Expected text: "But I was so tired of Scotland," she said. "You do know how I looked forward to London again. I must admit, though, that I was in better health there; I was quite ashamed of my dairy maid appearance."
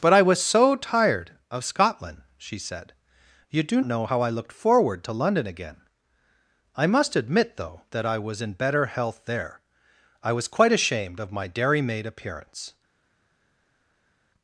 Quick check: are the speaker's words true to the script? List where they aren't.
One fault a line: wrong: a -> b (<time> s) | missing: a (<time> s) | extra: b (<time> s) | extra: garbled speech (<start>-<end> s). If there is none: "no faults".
no faults